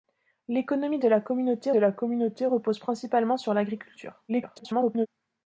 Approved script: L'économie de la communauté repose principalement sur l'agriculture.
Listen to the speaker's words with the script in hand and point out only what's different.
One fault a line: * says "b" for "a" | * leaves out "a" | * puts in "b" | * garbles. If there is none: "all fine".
* puts in "de la communauté"
* garbles